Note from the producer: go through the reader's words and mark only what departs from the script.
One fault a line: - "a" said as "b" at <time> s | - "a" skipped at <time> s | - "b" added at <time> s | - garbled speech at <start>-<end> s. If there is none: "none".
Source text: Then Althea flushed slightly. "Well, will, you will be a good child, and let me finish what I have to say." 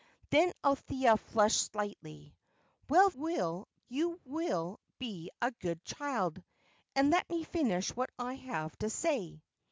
none